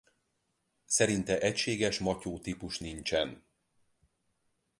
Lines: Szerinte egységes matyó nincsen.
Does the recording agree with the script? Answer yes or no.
no